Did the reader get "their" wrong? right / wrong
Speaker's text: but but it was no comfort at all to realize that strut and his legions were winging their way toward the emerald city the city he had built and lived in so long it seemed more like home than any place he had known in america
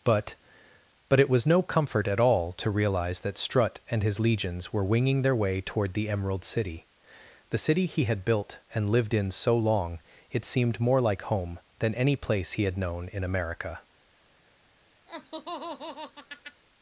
right